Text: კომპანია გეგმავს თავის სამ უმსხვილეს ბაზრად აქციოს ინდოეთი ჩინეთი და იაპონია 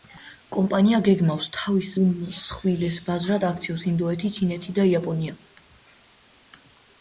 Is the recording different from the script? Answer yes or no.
yes